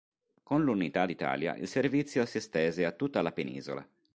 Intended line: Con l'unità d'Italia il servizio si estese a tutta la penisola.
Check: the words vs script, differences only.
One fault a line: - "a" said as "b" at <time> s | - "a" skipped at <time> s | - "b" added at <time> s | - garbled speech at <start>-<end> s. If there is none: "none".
none